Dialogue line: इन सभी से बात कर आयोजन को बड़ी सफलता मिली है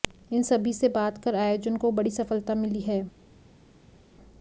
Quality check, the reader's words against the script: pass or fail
pass